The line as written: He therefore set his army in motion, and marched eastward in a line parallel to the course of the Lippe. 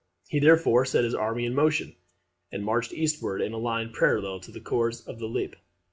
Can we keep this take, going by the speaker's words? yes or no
yes